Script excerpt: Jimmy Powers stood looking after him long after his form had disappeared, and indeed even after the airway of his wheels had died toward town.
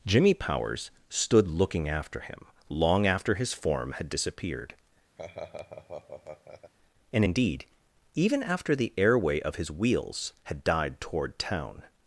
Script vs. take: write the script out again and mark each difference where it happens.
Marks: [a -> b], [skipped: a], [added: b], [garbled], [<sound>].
Jimmy Powers stood looking after him long after his form had disappeared, [laugh] and indeed even after the airway of his wheels had died toward town.